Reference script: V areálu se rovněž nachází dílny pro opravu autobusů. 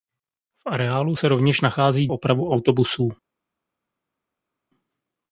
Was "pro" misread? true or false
true